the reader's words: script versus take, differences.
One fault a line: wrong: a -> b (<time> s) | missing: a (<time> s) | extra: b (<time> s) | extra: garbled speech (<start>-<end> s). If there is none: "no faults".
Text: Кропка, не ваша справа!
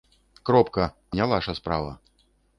no faults